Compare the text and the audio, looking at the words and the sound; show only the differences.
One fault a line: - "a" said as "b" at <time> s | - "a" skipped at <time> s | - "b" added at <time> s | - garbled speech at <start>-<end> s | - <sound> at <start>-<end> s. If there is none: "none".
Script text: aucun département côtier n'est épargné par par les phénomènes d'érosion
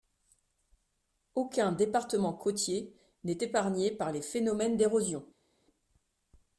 - "par" skipped at 4.1 s